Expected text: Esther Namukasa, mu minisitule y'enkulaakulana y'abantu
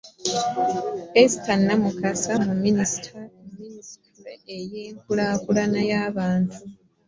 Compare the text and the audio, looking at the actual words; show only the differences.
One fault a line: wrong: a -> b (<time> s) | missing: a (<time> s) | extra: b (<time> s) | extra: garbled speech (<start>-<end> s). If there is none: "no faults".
no faults